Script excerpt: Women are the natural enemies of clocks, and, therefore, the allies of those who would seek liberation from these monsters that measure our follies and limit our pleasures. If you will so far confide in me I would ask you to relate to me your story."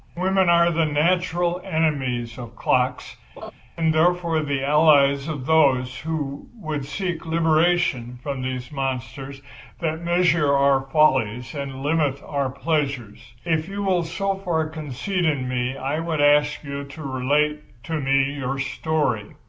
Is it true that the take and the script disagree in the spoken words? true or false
false